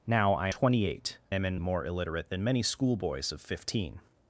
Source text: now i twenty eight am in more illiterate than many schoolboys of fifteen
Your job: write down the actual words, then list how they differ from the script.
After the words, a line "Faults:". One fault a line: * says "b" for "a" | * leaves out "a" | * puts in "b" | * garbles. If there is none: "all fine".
now i twenty eight am in more illiterate than many schoolboys of fifteen
Faults:
all fine